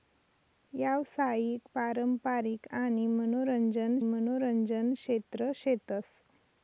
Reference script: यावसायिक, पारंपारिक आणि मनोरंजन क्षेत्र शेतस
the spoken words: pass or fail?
fail